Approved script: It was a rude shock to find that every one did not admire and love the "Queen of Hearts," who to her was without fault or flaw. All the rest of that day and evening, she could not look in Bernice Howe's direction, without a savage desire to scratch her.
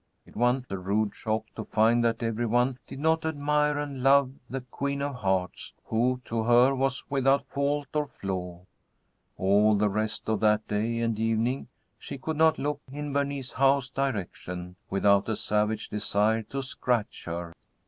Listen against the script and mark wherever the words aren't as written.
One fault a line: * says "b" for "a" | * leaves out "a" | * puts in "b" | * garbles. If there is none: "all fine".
* says "one" for "was"